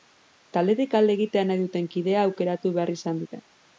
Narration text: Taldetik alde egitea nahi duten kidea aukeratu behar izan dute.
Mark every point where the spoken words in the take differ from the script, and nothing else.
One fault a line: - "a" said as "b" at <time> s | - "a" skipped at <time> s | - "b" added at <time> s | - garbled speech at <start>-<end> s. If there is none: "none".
none